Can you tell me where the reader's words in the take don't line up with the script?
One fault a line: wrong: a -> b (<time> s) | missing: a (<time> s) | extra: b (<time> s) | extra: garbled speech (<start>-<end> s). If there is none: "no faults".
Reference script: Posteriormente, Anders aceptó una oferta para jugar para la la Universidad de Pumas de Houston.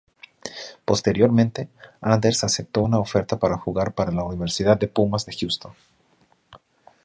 missing: la (4.2 s)